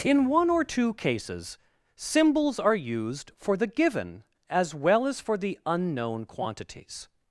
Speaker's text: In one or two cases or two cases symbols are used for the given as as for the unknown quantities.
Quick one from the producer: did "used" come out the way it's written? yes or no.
yes